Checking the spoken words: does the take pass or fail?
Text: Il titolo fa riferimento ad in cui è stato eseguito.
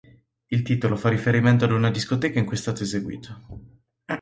fail